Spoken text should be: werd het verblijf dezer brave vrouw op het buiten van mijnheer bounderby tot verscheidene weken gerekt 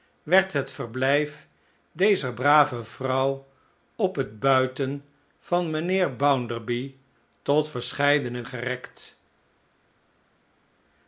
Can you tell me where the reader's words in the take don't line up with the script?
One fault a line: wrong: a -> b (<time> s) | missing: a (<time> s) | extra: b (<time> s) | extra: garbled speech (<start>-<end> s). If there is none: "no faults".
missing: weken (8.4 s)